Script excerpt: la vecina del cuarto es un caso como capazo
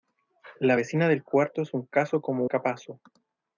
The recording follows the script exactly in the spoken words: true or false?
true